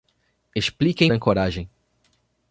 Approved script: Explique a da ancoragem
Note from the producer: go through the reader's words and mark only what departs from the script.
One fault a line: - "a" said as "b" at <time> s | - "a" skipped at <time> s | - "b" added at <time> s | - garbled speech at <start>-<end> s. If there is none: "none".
none